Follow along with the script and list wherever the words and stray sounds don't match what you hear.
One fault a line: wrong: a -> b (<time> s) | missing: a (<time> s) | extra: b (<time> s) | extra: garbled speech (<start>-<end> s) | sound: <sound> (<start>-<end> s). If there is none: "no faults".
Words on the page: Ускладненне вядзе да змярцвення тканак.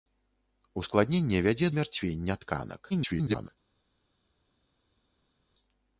missing: да (1.7 s)
extra: garbled speech (2.9-3.5 s)